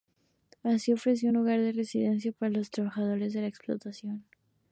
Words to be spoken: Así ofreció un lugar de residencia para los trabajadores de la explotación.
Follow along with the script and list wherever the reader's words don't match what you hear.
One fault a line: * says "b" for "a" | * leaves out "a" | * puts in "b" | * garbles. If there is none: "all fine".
all fine